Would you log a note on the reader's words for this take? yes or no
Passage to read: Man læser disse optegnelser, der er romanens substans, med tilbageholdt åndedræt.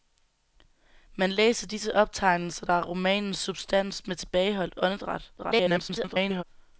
yes